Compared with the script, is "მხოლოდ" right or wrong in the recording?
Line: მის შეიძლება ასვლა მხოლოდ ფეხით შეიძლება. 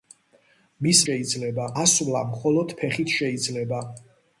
right